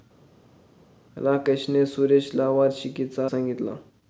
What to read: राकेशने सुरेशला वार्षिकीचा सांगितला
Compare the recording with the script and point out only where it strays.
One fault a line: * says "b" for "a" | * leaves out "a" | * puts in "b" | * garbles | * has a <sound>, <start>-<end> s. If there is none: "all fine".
all fine